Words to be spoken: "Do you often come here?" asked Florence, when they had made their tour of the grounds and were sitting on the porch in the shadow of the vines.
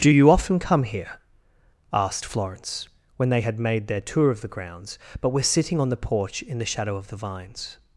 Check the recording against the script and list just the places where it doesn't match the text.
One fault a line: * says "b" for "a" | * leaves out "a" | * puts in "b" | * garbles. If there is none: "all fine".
* says "but" for "and"